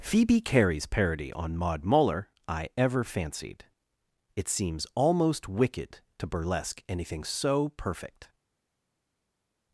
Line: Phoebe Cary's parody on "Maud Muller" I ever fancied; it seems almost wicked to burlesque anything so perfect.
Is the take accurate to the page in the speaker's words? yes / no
yes